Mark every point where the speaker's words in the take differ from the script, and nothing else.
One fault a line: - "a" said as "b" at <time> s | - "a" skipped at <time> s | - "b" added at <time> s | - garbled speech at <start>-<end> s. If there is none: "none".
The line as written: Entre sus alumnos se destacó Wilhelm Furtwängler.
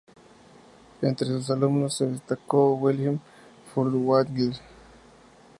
none